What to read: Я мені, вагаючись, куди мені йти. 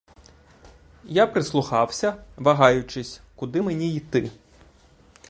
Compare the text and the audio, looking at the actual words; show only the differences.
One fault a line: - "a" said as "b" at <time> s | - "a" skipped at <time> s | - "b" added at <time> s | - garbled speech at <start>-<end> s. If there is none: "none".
- "мені" said as "прислухався" at 1.3 s